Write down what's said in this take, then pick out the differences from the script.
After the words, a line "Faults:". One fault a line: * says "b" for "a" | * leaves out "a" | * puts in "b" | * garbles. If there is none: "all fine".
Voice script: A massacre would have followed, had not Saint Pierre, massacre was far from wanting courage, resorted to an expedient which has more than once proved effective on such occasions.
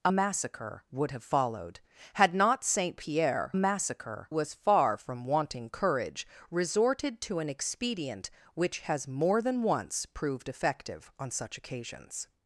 A massacre would have followed, had not Saint Pierre, massacre was far from wanting courage, resorted to an expedient which has more than once proved effective on such occasions.
Faults:
all fine